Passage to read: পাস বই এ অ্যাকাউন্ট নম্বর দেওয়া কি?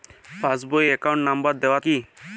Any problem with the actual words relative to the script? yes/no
no